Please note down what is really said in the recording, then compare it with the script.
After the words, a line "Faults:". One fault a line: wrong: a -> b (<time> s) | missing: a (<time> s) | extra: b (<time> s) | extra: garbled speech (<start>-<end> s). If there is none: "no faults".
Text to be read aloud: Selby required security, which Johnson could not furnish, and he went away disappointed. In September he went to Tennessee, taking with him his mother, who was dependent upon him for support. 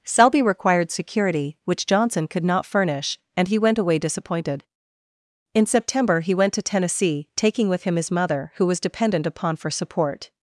Selby required security, which Johnson could not furnish, and he went away disappointed. In September he went to Tennessee, taking with him his mother, who was dependent upon for support.
Faults:
missing: him (9.6 s)